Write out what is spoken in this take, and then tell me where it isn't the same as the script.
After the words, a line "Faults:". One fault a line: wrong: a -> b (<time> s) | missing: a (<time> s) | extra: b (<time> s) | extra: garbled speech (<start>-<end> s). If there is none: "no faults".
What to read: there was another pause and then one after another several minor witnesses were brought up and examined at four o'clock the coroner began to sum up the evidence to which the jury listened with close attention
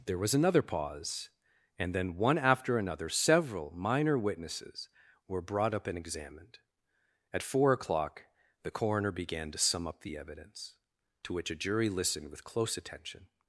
there was another pause and then one after another several minor witnesses were brought up and examined at four o'clock the coroner began to sum up the evidence to which a jury listened with close attention
Faults:
wrong: the -> a (11.5 s)